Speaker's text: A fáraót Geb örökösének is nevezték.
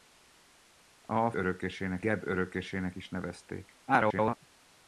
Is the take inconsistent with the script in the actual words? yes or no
yes